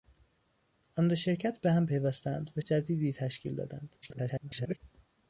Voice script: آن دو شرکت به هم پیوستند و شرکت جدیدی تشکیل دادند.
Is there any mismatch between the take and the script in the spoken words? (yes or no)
yes